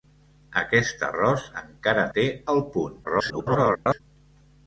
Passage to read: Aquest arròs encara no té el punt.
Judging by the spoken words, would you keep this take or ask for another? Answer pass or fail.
fail